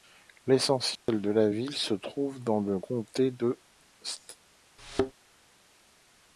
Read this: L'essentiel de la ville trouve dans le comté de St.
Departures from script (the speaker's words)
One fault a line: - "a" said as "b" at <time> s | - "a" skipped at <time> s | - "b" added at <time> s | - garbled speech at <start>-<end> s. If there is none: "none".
- "se" added at 1.7 s